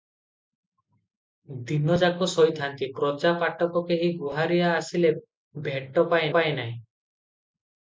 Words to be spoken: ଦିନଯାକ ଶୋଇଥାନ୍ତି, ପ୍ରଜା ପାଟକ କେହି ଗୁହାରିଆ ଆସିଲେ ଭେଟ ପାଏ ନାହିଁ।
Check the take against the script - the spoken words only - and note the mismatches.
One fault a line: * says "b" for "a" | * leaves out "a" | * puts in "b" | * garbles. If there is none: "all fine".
* puts in "ପାଏ"